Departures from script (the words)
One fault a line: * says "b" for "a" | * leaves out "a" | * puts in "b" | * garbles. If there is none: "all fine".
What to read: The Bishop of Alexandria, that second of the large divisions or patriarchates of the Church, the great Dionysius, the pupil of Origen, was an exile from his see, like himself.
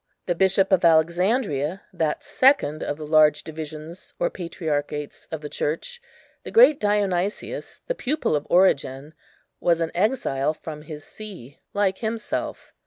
all fine